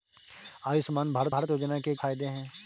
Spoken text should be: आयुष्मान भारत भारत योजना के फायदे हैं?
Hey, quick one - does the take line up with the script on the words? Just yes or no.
yes